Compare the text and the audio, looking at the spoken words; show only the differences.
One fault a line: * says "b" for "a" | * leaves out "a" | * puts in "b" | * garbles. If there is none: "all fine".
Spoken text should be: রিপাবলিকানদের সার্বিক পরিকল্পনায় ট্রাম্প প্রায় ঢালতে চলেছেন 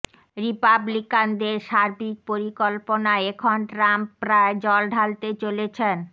* puts in "এখন"
* puts in "জল"